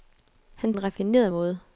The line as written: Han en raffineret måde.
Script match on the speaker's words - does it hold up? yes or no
yes